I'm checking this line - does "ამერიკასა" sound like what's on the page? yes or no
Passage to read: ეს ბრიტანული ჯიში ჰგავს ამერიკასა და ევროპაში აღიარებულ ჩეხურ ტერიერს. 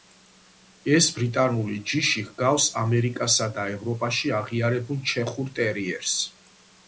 yes